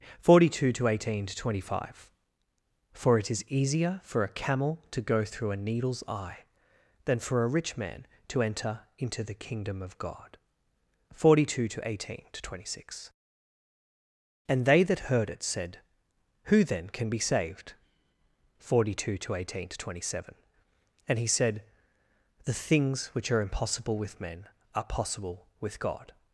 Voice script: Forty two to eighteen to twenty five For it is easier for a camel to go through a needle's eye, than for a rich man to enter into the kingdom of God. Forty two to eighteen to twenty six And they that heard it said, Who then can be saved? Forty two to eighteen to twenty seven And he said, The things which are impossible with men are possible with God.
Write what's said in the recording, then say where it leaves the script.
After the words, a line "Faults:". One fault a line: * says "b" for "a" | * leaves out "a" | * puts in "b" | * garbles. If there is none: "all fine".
Forty two to eighteen to twenty five For it is easier for a camel to go through a needle's eye, than for a rich man to enter into the kingdom of God. Forty two to eighteen to twenty six And they that heard it said, Who then can be saved? Forty two to eighteen to twenty seven And he said, The things which are impossible with men are possible with God.
Faults:
all fine